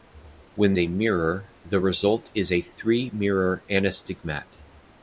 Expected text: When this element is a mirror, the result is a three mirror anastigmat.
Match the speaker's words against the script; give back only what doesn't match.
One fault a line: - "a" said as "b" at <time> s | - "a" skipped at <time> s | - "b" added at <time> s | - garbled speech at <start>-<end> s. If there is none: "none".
- "this element is" skipped at 0.7 s